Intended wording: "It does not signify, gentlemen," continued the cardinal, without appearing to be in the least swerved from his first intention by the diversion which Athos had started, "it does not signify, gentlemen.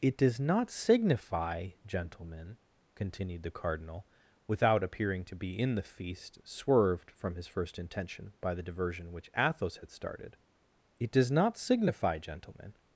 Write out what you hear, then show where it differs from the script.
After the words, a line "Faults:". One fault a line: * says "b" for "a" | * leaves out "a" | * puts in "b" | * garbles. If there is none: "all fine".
"It does not signify, gentlemen," continued the cardinal, without appearing to be in the feast swerved from his first intention by the diversion which Athos had started, "it does not signify, gentlemen.
Faults:
* says "feast" for "least"